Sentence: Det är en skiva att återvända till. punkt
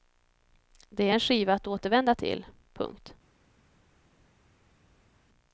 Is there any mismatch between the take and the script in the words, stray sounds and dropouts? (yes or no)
no